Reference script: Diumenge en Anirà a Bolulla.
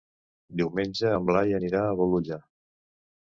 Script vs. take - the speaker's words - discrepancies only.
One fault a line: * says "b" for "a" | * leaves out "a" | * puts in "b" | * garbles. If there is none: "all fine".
* puts in "Blai"